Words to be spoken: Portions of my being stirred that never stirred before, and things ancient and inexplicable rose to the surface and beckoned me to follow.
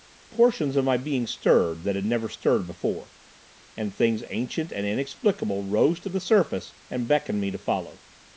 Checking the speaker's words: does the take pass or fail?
fail